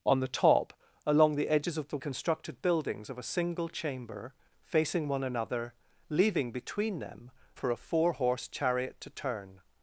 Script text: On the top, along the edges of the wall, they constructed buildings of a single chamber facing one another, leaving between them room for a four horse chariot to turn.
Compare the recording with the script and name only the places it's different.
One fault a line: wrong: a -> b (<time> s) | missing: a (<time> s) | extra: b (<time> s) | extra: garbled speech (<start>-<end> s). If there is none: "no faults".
missing: wall they (2.0 s)
missing: room (7.3 s)